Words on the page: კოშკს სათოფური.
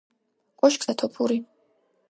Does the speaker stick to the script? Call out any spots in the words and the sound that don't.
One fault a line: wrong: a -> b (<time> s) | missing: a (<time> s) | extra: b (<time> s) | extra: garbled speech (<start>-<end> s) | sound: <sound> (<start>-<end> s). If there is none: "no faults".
no faults